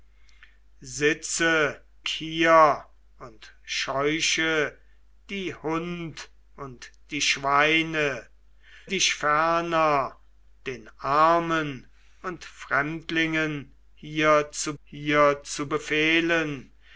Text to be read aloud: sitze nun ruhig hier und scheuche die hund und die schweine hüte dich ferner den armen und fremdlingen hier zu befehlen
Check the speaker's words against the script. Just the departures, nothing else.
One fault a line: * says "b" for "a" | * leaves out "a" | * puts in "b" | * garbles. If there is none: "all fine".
* leaves out "nun ruhig"
* leaves out "hüte"
* puts in "hier zu"